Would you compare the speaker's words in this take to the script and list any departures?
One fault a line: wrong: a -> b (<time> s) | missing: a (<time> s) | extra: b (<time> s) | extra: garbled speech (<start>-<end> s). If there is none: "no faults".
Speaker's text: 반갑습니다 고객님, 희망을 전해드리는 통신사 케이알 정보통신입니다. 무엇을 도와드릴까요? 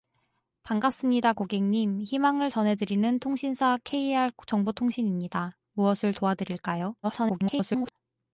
extra: garbled speech (7.0-7.9 s)